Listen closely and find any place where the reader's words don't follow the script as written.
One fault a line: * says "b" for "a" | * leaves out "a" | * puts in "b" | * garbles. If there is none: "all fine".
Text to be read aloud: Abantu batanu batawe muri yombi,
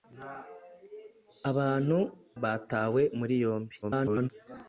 * leaves out "batanu"
* garbles